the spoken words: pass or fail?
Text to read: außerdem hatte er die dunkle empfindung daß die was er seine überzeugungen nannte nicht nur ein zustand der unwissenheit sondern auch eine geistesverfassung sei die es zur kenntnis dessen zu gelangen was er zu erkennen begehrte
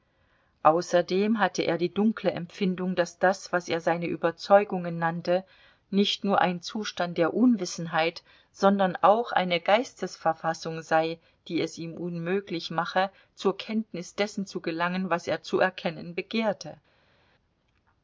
fail